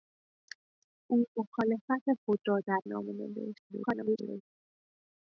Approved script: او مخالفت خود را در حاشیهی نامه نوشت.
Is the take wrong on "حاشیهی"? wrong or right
wrong